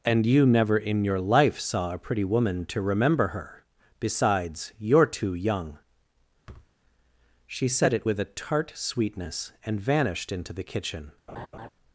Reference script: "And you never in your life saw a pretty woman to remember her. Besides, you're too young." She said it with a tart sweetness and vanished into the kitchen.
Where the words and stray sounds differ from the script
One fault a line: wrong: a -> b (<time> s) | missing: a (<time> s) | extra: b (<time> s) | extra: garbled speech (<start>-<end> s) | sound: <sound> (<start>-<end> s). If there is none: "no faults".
sound: thud (6.5-6.7 s)
sound: laugh (11.3-11.7 s)